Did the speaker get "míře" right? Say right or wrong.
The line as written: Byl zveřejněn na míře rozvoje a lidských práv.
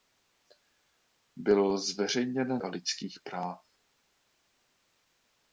wrong